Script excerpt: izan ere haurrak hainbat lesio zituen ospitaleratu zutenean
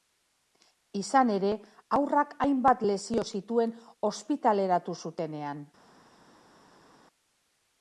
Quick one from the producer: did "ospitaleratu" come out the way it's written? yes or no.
yes